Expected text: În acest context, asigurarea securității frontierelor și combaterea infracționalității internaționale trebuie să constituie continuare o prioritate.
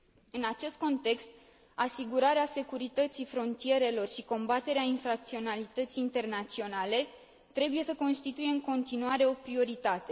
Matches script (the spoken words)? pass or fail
fail